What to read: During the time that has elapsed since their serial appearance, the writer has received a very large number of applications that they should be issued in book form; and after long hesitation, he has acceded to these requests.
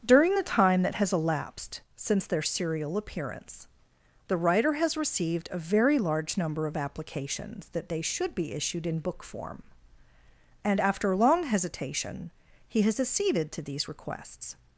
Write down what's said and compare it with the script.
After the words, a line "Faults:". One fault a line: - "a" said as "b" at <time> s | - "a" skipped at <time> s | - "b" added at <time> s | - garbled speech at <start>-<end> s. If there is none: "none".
During the time that has elapsed since their serial appearance, the writer has received a very large number of applications that they should be issued in book form; and after long hesitation, he has acceded to these requests.
Faults:
none